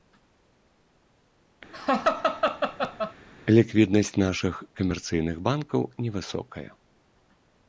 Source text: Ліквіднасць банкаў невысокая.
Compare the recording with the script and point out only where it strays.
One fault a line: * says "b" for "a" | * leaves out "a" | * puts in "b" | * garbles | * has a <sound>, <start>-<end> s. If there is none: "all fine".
* has a laugh, 1.7-3.1 s
* puts in "нашых камерцыйных"